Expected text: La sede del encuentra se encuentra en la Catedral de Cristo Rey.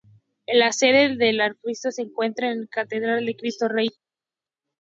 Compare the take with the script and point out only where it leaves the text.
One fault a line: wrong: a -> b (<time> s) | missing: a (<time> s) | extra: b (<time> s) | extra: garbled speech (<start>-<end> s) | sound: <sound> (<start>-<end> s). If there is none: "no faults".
wrong: encuentra -> arzobispo (1.4 s)